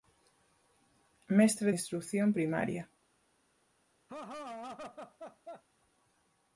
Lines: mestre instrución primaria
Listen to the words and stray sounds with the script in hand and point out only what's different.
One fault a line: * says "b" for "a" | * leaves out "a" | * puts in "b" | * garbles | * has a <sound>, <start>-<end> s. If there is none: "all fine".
* has a laugh, 4.1-5.6 s